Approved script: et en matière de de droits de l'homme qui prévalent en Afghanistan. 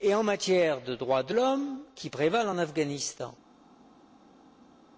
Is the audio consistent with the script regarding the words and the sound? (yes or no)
no